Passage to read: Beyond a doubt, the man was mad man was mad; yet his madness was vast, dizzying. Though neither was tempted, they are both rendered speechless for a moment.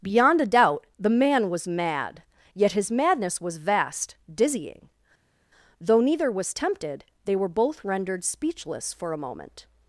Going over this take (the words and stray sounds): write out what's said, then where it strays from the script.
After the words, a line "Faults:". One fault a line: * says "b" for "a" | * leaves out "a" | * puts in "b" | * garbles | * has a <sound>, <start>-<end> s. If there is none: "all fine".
Beyond a doubt, the man was mad; yet his madness was vast, dizzying. Though neither was tempted, they were both rendered speechless for a moment.
Faults:
* leaves out "man was mad"
* says "were" for "are"